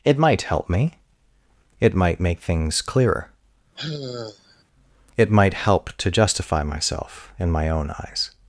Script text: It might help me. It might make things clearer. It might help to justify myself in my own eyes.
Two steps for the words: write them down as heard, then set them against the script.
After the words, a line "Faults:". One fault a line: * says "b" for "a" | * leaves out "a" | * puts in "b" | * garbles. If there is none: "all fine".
It might help me. It might make things clearer. It might help to justify myself in my own eyes.
Faults:
all fine